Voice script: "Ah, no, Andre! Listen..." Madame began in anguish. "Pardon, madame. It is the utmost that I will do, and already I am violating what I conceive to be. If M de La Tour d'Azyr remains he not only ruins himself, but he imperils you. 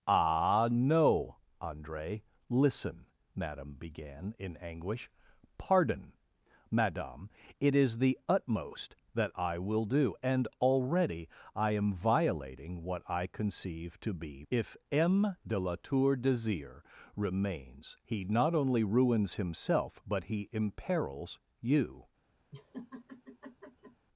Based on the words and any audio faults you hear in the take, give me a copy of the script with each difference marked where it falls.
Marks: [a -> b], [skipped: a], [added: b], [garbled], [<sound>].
"Ah, no, Andre! Listen..." Madame began in anguish. "Pardon, madame. It is the utmost that I will do, and already I am violating what I conceive to be. If M de La Tour d'Azyr remains he not only ruins himself, but he imperils you. [laugh]